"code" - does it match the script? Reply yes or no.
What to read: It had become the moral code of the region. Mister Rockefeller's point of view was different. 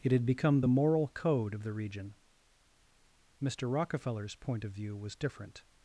yes